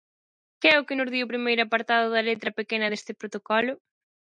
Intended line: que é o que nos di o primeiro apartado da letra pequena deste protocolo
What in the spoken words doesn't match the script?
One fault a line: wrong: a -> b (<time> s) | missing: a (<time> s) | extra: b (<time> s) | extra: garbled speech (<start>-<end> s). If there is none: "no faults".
no faults